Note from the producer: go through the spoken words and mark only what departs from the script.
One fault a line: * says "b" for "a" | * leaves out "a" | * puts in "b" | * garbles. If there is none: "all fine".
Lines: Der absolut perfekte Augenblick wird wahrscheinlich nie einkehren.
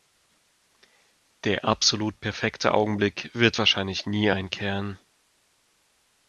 all fine